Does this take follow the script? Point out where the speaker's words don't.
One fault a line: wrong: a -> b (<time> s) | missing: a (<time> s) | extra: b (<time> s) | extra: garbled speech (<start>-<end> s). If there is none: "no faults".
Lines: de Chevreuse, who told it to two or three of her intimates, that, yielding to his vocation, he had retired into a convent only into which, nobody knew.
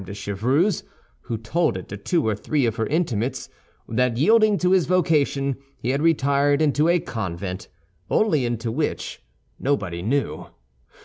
no faults